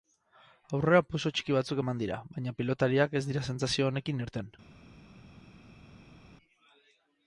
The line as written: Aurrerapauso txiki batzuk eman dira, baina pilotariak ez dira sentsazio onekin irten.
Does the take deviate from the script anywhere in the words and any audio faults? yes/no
no